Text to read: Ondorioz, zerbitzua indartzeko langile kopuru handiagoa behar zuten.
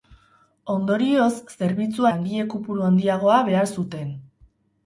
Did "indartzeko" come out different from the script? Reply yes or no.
yes